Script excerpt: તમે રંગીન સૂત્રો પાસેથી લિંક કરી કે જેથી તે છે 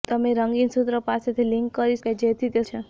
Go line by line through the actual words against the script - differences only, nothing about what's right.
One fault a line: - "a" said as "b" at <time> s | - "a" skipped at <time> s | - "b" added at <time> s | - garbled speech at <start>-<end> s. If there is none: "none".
none